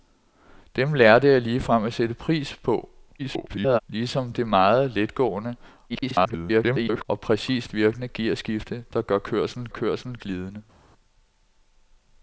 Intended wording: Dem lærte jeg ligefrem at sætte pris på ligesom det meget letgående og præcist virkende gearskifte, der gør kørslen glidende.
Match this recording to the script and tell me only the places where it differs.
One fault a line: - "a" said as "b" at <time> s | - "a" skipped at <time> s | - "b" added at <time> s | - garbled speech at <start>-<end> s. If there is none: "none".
- garbled speech at 3.2-3.8 s
- garbled speech at 5.9-7.1 s
- "kørslen" added at 9.7 s